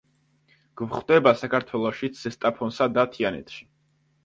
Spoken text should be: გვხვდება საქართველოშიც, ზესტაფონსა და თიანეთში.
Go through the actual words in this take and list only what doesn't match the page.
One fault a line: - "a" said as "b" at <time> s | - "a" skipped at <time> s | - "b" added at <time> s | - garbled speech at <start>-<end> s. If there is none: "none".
none